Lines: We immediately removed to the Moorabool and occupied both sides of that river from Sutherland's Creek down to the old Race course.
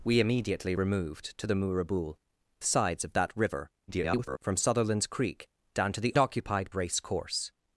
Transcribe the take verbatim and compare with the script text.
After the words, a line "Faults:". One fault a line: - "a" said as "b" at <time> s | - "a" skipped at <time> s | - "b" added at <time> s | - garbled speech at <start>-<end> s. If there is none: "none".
We immediately removed to the Moorabool sides of that river [garbled] from Sutherland's Creek down to the occupied Race course.
Faults:
- "and occupied both" skipped at 2.1 s
- garbled speech at 3.9-4.4 s
- "old" said as "occupied" at 6.2 s